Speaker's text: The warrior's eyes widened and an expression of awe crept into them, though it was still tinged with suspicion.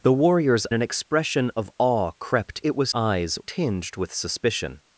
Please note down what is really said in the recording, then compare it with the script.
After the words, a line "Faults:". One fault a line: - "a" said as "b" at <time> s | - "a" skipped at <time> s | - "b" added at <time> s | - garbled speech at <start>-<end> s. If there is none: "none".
The warrior's an expression of awe crept it was eyes tinged with suspicion.
Faults:
- "eyes widened and" skipped at 0.7 s
- "into them though" skipped at 2.6 s
- "still" said as "eyes" at 2.9 s